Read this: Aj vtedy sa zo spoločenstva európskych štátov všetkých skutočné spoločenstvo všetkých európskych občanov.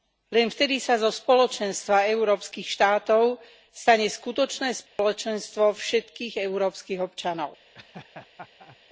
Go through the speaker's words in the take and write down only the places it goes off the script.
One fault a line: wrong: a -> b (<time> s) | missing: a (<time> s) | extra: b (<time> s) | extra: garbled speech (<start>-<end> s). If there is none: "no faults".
wrong: Aj -> Len (0.3 s)
wrong: všetkých -> stane (3.7 s)